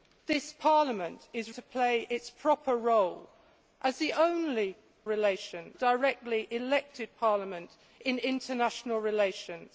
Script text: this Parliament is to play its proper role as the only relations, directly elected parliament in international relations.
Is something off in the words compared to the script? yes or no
no